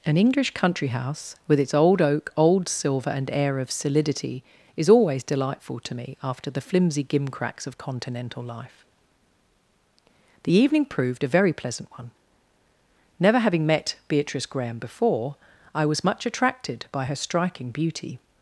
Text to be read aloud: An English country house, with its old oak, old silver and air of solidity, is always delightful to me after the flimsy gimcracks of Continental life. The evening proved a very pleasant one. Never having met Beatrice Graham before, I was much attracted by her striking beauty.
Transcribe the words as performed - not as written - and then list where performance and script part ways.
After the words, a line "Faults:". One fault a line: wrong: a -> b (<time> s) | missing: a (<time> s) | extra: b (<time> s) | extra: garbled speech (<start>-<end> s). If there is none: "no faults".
An English country house, with its old oak, old silver and air of solidity, is always delightful to me after the flimsy gimcracks of Continental life. The evening proved a very pleasant one. Never having met Beatrice Graham before, I was much attracted by her striking beauty.
Faults:
no faults